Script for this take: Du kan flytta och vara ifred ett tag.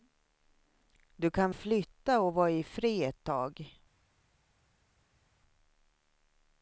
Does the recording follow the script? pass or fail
pass